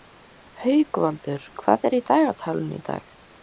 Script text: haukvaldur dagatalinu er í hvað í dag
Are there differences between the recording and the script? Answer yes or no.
yes